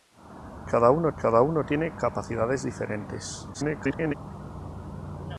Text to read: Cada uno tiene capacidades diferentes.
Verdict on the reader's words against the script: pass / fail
fail